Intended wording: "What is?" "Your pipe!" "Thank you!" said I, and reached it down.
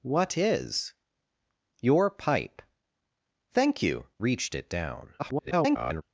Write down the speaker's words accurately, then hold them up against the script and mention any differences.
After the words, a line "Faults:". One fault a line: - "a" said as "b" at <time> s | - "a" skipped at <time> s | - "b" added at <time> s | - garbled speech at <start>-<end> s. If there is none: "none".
"What is?" "Your pipe!" "Thank you!" reached it down. [garbled]
Faults:
- "said I and" skipped at 4.1 s
- garbled speech at 5.2-6.0 s